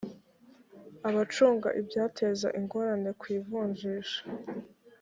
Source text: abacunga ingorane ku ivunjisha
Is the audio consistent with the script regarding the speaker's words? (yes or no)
no